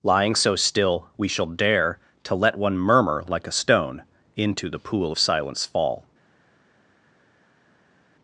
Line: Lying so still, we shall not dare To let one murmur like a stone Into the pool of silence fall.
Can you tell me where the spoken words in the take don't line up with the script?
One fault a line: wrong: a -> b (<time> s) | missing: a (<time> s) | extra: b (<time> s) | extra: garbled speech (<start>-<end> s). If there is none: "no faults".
missing: not (1.4 s)